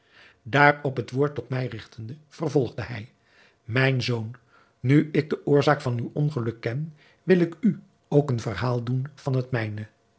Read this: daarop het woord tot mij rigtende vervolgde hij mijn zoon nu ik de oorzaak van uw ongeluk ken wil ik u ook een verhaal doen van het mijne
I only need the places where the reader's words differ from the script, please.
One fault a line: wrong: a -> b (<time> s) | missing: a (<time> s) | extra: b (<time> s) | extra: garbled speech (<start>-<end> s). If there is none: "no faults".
no faults